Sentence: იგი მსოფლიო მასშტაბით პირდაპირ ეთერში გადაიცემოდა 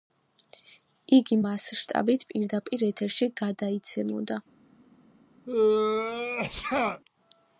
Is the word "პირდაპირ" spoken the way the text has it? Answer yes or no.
yes